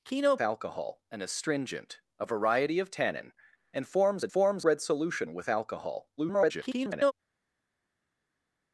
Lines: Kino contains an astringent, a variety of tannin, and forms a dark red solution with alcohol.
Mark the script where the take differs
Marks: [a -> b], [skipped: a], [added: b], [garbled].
Kino [contains -> alcohol] an astringent, a variety of tannin, and forms a [dark -> forms] red solution with alcohol. [garbled]